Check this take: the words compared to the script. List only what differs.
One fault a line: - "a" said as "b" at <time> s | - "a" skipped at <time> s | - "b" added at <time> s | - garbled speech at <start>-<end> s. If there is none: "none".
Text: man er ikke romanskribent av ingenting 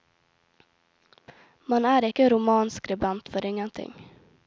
- "av" said as "for" at 3.3 s